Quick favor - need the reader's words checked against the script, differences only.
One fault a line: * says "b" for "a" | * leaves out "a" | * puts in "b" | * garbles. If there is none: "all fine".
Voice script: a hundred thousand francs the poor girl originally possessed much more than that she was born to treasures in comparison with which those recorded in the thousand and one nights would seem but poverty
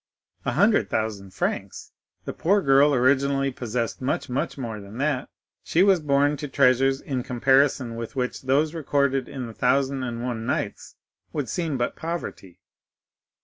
* puts in "much"